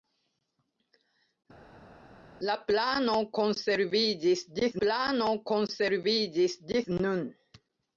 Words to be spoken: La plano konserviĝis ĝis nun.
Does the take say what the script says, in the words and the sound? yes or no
no